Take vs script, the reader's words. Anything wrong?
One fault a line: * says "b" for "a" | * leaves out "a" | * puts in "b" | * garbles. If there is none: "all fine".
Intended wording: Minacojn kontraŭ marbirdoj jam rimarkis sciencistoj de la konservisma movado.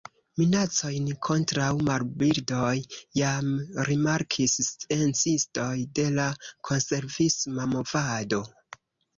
all fine